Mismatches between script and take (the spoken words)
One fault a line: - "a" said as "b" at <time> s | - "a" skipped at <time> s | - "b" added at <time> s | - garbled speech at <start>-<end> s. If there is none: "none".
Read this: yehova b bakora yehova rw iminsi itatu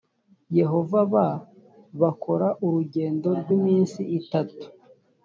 - "yehova" said as "urugendo" at 2.6 s